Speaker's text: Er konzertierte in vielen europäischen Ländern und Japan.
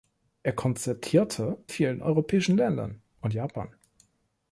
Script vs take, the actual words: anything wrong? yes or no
yes